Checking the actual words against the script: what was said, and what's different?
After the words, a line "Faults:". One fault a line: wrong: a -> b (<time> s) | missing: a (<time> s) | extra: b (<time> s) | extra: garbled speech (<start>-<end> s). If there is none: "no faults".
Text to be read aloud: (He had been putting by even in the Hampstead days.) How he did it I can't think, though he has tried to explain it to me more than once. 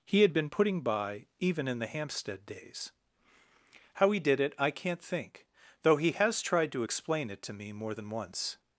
(He had been putting by even in the Hampstead days.) How he did it I can't think, though he has tried to explain it to me more than once.
Faults:
no faults